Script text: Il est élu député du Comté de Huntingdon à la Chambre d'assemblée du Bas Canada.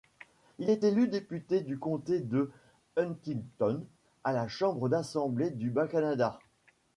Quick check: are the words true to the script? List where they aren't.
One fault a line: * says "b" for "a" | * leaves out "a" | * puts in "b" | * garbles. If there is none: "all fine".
all fine